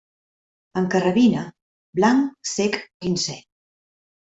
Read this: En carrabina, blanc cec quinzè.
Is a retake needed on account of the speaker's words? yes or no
no